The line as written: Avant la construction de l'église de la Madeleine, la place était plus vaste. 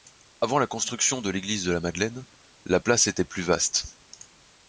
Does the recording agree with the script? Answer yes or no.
yes